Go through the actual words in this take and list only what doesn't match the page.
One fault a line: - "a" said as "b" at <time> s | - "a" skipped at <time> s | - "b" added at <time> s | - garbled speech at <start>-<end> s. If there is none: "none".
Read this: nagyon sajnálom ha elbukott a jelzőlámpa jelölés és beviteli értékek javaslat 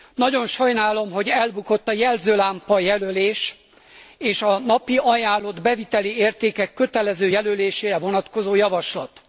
- "ha" said as "hogy" at 1.1 s
- "a napi ajánlott" added at 4.4 s
- "kötelező jelölésére vonatkozó" added at 6.7 s